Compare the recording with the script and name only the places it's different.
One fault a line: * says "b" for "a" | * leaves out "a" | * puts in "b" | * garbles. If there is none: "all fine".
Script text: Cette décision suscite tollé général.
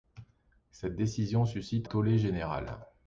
all fine